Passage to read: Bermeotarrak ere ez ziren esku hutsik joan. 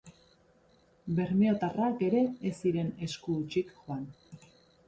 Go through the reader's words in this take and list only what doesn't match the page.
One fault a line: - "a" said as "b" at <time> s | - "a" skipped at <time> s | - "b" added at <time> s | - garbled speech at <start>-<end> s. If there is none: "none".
none